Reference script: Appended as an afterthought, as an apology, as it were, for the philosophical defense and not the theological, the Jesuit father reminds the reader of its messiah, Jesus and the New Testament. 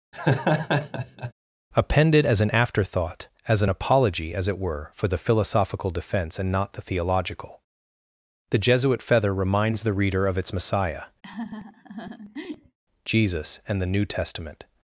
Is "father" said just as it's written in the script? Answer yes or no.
no